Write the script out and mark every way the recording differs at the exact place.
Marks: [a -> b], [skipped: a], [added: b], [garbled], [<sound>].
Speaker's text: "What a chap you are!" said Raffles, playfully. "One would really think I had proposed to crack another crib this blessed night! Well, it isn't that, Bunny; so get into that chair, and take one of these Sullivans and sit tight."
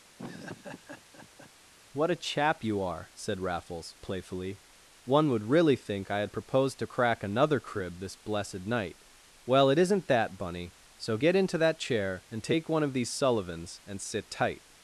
[laugh] "What a chap you are!" said Raffles, playfully. "One would really think I had proposed to crack another crib this blessed night! Well, it isn't that, Bunny; so get into that chair, and take one of these Sullivans and sit tight."